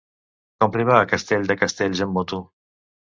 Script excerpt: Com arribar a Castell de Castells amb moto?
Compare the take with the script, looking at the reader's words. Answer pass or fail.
pass